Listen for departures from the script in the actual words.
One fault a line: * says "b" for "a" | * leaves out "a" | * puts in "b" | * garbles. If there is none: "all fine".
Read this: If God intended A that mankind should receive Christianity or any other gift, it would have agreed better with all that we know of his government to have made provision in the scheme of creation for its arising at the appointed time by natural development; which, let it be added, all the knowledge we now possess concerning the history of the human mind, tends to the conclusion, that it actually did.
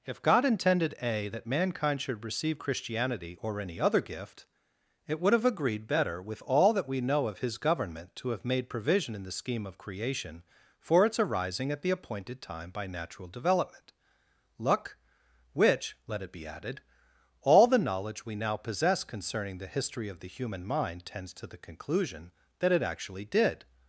* puts in "luck"